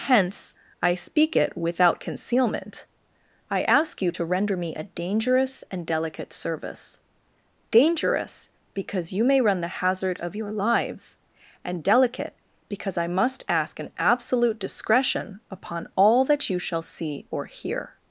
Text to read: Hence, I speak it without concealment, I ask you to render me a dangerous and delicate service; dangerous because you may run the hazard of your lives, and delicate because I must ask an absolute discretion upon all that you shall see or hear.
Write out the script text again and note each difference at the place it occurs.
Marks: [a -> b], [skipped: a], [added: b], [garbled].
Hence, I speak it without concealment, I ask you to render me a dangerous and delicate service; dangerous because you may run the hazard of your lives, and delicate because I must ask an absolute discretion upon all that you shall see or hear.